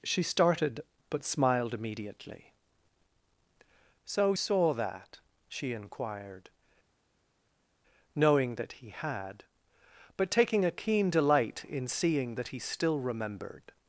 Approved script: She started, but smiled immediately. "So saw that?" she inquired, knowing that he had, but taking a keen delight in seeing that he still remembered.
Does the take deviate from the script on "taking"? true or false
false